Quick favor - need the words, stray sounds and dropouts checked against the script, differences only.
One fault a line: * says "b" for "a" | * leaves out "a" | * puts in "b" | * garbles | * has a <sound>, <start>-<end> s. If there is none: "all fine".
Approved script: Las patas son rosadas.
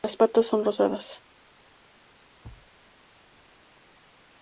* has a thud, 2.4-2.7 s